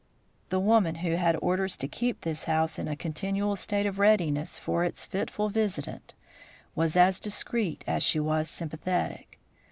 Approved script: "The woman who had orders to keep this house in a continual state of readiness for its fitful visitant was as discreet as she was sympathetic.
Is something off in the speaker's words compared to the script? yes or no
no